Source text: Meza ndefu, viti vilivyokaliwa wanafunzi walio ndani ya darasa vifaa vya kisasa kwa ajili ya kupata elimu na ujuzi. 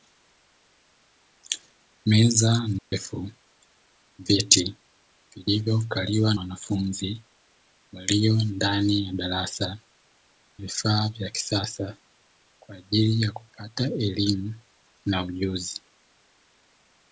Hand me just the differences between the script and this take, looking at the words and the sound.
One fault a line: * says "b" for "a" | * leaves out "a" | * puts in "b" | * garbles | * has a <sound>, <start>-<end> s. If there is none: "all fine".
* has a dropout, 2.8-2.9 s